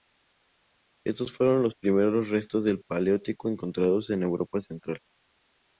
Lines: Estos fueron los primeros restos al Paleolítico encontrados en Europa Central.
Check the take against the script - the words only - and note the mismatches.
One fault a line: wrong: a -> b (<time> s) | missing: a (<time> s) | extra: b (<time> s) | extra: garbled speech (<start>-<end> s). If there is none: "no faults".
wrong: al -> del (2.6 s)